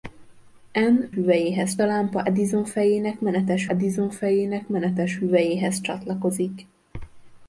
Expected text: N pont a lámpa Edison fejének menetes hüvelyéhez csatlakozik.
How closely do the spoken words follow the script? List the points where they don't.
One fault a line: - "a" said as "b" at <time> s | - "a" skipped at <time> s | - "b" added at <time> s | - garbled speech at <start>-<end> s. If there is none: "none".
- "pont" said as "hüvelyéhez" at 1.1 s
- "Edison fejének menetes" added at 3.7 s